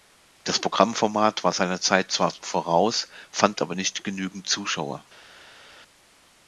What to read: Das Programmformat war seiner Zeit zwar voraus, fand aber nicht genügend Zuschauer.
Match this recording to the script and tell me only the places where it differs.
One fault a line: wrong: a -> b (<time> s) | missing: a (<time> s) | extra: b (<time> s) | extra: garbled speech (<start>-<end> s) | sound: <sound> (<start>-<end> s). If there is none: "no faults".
no faults